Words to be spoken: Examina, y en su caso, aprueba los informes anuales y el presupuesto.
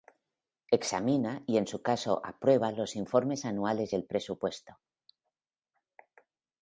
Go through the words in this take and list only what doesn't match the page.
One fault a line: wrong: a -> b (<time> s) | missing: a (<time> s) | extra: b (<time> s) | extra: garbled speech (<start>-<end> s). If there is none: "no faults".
no faults